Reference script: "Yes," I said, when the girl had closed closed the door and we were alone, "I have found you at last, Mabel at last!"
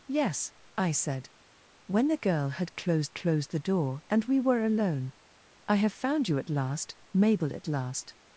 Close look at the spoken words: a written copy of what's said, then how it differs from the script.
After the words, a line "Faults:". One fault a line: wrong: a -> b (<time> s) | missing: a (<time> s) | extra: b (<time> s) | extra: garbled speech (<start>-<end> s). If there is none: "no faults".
"Yes," I said, when the girl had closed closed the door and we were alone, "I have found you at last, Mabel at last!"
Faults:
no faults